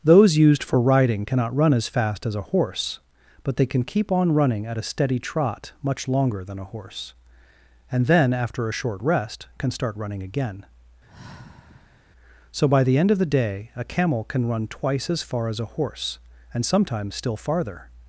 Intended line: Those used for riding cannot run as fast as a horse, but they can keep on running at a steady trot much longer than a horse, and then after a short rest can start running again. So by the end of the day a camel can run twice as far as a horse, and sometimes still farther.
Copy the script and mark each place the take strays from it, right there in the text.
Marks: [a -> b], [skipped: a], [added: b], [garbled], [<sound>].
Those used for riding cannot run as fast as a horse, but they can keep on running at a steady trot much longer than a horse, and then after a short rest can start running again. [sigh] So by the end of the day a camel can run twice as far as a horse, and sometimes still farther.